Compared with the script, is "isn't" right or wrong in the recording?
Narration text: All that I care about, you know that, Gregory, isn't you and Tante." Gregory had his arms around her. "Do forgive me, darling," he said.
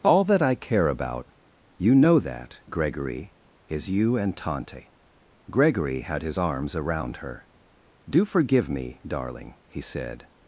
wrong